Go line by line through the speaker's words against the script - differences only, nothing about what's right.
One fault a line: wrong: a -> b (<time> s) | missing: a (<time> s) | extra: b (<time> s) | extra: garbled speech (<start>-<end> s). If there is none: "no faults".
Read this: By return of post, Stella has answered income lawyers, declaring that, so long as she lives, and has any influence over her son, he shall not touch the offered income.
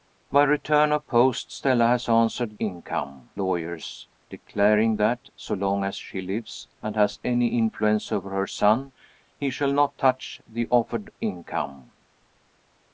no faults